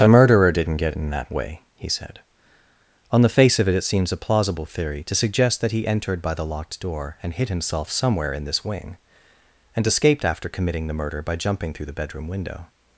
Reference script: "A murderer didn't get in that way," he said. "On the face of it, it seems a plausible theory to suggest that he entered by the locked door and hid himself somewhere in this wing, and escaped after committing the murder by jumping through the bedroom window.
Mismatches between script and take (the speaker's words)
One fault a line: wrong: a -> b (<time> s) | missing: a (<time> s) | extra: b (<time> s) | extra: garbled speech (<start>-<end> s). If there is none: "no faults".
no faults